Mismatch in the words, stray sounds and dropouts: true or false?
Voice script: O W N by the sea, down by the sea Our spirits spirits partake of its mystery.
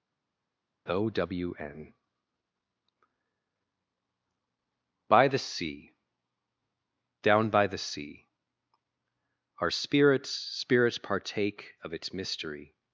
false